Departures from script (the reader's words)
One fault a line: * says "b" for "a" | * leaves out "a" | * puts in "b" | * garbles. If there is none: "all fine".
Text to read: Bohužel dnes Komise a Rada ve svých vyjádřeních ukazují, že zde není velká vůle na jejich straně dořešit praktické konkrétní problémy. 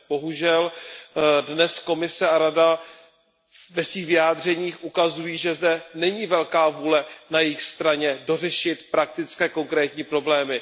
all fine